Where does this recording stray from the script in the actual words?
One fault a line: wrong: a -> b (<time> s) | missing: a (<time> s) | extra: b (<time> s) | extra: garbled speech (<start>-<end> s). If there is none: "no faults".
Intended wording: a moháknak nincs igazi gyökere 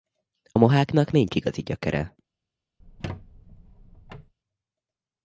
no faults